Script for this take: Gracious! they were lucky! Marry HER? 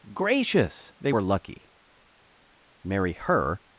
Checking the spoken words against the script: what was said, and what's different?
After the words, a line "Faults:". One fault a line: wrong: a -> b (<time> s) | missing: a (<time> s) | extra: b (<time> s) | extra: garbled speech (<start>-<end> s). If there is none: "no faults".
Gracious! they were lucky! Marry HER?
Faults:
no faults